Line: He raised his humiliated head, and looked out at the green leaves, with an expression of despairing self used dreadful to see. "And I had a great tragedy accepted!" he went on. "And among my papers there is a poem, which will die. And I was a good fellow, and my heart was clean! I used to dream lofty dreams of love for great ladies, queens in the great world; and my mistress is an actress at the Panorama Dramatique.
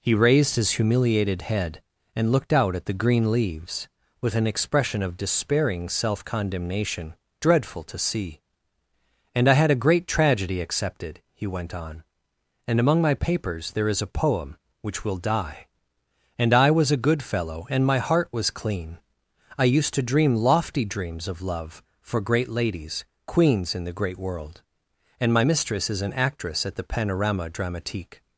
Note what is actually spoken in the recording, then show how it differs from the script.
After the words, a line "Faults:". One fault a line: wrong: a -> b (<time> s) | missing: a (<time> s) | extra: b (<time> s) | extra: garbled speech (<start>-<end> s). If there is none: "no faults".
He raised his humiliated head, and looked out at the green leaves, with an expression of despairing self condemnation dreadful to see. "And I had a great tragedy accepted!" he went on. "And among my papers there is a poem, which will die. And I was a good fellow, and my heart was clean! I used to dream lofty dreams of love for great ladies, queens in the great world; and my mistress is an actress at the Panorama Dramatique.
Faults:
wrong: used -> condemnation (6.2 s)